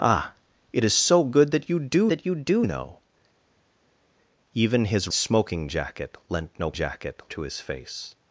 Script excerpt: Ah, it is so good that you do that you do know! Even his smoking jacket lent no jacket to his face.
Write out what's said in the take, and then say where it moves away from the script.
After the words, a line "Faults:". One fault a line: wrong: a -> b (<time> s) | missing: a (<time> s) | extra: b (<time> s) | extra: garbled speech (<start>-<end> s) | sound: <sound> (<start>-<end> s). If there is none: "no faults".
Ah, it is so good that you do that you do know! Even his smoking jacket lent no jacket to his face.
Faults:
no faults